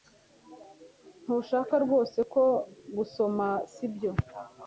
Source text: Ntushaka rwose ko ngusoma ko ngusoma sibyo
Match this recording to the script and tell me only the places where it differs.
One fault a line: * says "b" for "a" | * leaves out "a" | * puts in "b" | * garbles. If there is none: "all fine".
* leaves out "ko ngusoma"